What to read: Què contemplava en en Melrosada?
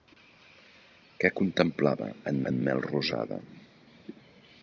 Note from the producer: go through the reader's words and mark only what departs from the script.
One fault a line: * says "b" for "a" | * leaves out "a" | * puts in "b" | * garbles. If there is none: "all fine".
all fine